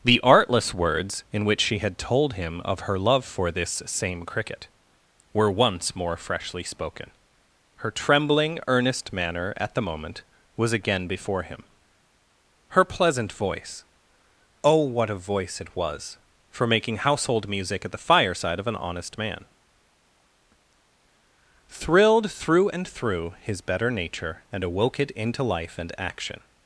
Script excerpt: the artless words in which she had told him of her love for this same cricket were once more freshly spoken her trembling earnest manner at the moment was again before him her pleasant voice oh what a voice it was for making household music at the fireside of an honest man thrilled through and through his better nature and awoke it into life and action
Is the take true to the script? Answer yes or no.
yes